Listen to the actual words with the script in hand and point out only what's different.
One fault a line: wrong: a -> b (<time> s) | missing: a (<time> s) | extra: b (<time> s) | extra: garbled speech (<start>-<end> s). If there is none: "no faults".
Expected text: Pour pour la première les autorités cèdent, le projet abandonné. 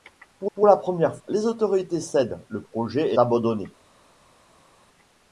no faults